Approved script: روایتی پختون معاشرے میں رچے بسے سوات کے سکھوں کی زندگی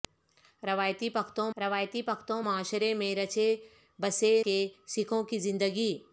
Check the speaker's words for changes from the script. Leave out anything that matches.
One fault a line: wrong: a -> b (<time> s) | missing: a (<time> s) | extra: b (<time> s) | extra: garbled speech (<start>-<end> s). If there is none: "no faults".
extra: روایتی پختون (1.6 s)
missing: سوات (4.3 s)